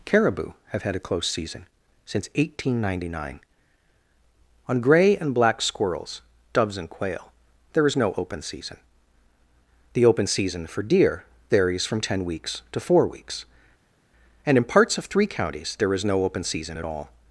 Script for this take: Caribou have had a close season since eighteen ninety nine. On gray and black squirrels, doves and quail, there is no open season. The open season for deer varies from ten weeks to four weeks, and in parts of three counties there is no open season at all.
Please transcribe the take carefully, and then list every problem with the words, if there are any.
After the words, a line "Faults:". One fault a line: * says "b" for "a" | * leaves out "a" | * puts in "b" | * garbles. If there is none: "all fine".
Caribou have had a close season since eighteen ninety nine. On gray and black squirrels, doves and quail, there is no open season. The open season for deer varies from ten weeks to four weeks, and in parts of three counties there is no open season at all.
Faults:
all fine